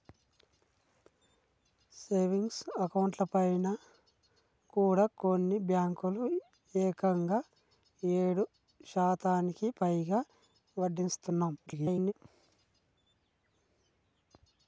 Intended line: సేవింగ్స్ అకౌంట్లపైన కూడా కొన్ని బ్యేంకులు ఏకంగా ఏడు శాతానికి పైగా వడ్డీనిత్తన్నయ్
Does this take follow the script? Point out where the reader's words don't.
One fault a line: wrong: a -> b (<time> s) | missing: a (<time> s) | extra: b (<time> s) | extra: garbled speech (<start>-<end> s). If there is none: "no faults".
extra: garbled speech (11.7-12.1 s)